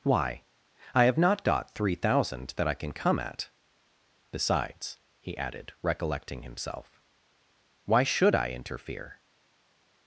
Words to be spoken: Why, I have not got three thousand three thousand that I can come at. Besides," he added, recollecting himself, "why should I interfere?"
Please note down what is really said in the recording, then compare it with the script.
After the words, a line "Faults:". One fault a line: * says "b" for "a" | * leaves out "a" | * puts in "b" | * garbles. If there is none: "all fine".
Why, I have not got three thousand that I can come at. Besides," he added, recollecting himself, "why should I interfere?"
Faults:
* leaves out "three thousand"